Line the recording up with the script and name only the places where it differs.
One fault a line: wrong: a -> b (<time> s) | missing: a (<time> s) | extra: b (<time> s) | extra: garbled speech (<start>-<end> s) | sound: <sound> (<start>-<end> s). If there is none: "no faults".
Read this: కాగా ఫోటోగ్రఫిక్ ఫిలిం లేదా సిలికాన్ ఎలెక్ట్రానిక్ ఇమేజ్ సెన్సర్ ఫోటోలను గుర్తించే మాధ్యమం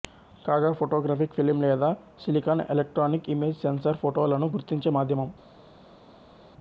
no faults